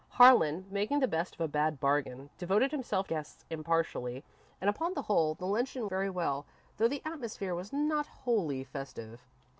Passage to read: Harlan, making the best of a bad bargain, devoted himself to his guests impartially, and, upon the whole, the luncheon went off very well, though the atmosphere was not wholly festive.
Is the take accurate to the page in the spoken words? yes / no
no